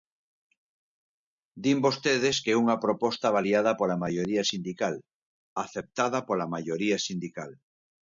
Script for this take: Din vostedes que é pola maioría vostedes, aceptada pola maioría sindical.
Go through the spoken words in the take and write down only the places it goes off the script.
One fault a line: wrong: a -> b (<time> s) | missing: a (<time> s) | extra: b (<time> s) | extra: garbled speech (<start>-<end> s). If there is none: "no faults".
extra: unha proposta avaliada (2.6 s)
wrong: vostedes -> sindical (4.5 s)